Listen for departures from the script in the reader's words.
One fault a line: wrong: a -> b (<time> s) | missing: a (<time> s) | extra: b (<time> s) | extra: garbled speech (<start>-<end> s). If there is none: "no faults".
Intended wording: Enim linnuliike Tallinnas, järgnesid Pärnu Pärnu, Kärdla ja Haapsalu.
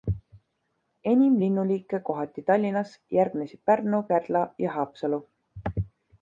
extra: kohati (2.1 s)
missing: Pärnu (4.0 s)